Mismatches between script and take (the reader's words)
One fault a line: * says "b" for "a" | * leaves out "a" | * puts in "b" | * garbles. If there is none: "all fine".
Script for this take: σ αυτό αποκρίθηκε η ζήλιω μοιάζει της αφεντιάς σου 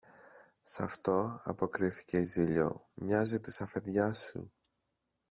all fine